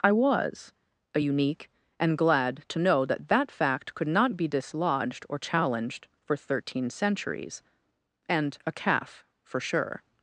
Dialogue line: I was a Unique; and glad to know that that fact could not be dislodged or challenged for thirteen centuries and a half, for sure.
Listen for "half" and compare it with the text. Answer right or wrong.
wrong